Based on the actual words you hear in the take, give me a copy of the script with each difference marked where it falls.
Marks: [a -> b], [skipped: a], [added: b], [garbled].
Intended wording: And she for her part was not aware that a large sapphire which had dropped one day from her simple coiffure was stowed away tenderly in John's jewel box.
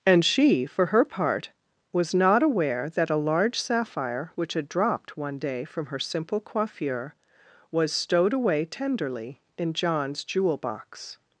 And she for her part was not aware that a large sapphire which had dropped one day from her simple coiffure was stowed away tenderly in John's jewel box.